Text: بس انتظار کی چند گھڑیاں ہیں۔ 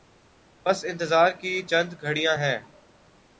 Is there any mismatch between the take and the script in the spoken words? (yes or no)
no